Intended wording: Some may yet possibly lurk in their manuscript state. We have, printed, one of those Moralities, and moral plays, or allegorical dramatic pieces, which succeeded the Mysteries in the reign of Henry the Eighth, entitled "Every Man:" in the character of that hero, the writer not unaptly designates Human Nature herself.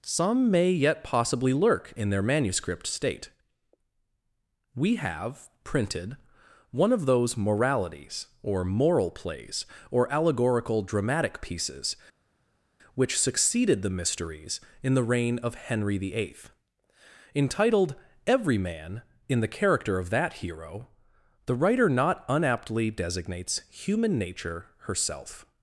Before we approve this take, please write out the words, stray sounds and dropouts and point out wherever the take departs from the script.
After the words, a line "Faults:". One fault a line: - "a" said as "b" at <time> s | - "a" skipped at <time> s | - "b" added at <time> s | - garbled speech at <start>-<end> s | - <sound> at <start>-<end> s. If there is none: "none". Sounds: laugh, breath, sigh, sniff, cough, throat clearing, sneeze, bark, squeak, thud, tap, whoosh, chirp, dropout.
Some may yet possibly lurk in their manuscript state. We have, printed, one of those Moralities, or moral plays, or allegorical dramatic pieces, which succeeded the Mysteries in the reign of Henry the Eighth, entitled "Every Man:" in the character of that hero, the writer not unaptly designates Human Nature herself.
Faults:
- "and" said as "or" at 8.4 s